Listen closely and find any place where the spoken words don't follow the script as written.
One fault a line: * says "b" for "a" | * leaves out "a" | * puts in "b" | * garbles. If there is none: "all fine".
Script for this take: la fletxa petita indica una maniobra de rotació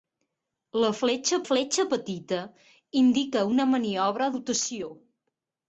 * puts in "fletxa"
* leaves out "de"